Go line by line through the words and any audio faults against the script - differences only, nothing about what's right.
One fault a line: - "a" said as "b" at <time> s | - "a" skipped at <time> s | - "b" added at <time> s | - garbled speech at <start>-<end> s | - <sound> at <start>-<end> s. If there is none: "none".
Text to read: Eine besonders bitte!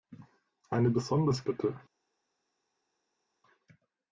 none